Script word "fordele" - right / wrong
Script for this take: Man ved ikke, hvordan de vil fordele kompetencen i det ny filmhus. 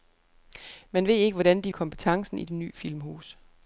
wrong